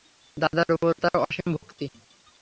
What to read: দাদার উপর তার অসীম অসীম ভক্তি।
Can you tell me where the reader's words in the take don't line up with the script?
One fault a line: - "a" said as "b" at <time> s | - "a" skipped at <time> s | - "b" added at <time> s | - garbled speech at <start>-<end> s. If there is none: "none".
- "অসীম" skipped at 1.5 s